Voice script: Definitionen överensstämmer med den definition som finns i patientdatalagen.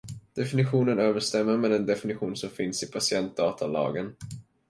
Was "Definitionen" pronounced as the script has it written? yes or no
yes